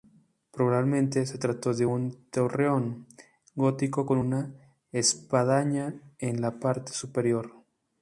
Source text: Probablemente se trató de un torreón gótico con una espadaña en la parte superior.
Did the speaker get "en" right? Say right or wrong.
right